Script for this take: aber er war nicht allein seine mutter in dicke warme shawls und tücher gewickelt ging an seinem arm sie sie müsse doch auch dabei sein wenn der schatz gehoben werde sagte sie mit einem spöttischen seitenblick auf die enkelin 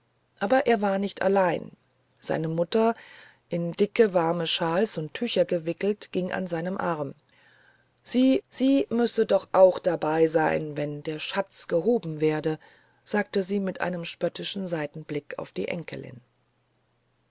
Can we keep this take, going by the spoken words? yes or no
yes